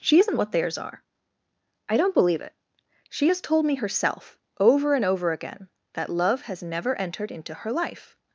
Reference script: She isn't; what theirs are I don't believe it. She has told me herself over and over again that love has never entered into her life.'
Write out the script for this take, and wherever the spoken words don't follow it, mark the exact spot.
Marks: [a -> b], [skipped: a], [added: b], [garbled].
She isn't; what theirs are I don't believe it. She has told me herself over and over again that love has never entered into her life.'